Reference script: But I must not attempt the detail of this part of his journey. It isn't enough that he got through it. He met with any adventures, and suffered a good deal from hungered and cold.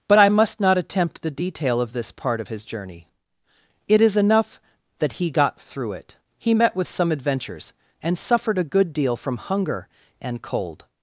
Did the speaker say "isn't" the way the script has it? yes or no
no